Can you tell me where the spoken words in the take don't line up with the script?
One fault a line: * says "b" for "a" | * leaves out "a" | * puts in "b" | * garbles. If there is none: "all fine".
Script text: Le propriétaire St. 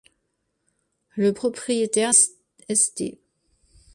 all fine